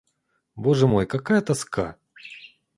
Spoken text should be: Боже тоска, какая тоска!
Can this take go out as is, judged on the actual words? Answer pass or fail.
fail